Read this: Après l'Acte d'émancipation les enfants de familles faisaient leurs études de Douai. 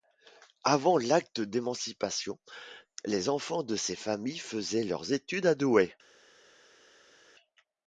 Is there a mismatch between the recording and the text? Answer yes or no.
yes